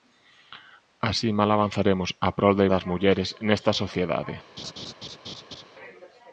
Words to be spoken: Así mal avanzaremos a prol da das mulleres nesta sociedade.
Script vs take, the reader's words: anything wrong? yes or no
no